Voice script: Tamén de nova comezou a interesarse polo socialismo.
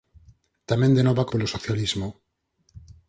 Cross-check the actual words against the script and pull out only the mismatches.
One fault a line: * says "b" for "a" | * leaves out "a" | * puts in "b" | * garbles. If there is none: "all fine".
* leaves out "comezou a interesarse"